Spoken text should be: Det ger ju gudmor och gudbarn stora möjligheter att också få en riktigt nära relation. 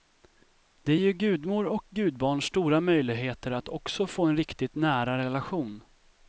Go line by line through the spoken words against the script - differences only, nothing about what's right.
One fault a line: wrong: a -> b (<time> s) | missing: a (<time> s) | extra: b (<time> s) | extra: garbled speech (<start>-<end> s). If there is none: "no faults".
missing: ger (0.9 s)